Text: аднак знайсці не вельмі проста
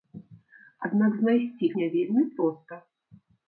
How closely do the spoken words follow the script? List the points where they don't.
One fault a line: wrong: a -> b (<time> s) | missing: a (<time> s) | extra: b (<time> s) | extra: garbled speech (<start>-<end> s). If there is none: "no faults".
no faults